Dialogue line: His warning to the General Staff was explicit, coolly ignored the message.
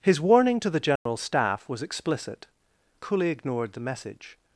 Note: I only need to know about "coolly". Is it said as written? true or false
true